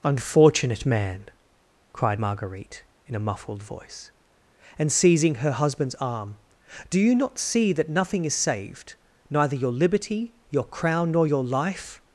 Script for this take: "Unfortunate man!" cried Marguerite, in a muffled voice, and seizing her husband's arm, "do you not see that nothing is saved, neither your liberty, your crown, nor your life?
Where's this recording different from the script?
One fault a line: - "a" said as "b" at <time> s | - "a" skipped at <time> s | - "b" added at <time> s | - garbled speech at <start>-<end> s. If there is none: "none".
none